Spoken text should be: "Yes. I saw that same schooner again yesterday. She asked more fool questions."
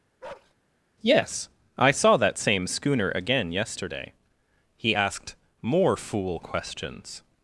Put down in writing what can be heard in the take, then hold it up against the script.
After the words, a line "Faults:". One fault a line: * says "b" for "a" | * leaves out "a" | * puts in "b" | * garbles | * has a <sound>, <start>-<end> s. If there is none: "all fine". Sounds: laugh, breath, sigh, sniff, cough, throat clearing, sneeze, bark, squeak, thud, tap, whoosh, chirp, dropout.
"Yes. I saw that same schooner again yesterday. He asked more fool questions."
Faults:
* has a bark, 0.2-0.5 s
* says "He" for "She"